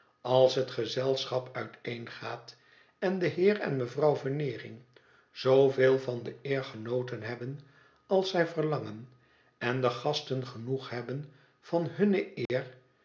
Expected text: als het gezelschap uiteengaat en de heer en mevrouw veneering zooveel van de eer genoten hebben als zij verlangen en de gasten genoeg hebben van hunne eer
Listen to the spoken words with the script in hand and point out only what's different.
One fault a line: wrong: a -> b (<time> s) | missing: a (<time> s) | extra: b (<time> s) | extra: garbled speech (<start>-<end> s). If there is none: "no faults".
no faults